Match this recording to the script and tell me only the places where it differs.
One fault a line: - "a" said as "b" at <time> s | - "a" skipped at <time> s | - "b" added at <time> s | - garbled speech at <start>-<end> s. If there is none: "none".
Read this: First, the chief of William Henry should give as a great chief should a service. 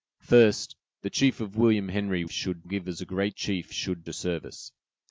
none